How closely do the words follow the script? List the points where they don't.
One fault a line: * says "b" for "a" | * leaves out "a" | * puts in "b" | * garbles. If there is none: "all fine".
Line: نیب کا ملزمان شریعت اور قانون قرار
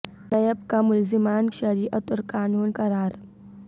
all fine